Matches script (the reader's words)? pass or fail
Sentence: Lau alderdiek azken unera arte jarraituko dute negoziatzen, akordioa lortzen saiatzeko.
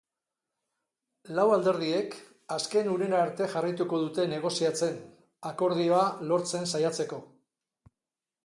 pass